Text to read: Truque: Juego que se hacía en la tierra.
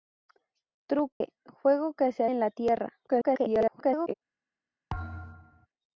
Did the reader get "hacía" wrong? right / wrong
wrong